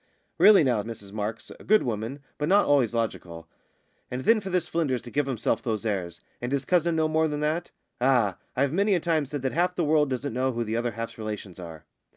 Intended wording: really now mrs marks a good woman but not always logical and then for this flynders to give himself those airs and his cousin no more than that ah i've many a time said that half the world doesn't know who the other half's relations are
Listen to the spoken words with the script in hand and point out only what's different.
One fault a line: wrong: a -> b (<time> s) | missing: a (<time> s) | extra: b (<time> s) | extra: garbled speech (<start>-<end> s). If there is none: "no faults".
no faults